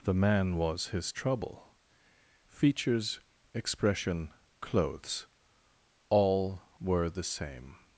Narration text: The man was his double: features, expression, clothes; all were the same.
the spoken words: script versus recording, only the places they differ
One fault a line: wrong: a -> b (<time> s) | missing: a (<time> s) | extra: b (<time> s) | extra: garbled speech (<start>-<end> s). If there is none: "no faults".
wrong: double -> trouble (1.1 s)